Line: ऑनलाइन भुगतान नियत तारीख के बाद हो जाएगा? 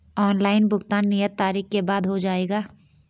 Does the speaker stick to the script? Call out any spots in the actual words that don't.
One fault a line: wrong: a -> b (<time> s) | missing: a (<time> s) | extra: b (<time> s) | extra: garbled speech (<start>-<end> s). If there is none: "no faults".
no faults